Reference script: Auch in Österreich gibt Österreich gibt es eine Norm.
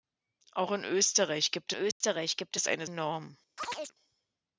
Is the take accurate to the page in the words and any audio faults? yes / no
no